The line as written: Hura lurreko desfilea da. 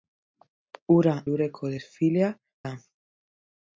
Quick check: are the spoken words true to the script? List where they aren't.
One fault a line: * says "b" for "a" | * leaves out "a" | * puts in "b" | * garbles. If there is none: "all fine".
all fine